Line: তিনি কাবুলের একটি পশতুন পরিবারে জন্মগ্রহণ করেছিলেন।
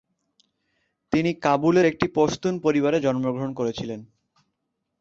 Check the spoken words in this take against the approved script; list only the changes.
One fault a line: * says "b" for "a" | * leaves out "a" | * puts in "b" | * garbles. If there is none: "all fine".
all fine